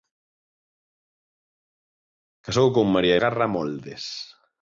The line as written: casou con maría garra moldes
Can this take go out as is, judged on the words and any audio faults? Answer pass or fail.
pass